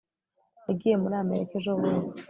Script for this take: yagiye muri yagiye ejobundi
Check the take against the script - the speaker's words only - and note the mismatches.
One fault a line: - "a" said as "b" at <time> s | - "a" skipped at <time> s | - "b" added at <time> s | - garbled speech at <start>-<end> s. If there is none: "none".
- "yagiye" said as "amerika" at 1.2 s